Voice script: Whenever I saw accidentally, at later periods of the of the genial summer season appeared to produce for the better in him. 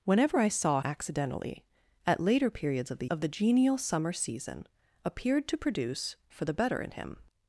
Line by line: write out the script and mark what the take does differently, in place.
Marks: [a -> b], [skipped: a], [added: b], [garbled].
Whenever I saw accidentally, at later periods of the of the genial summer season appeared to produce for the better in him.